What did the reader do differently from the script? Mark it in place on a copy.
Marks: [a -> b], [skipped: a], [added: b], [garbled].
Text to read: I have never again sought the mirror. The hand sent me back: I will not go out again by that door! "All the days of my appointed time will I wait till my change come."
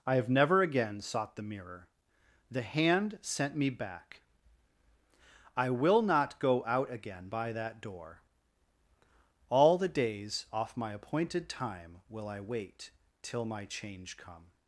I have never again sought the mirror. The hand sent me back: I will not go out again by that door! "All the days [of -> off] my appointed time will I wait till my change come."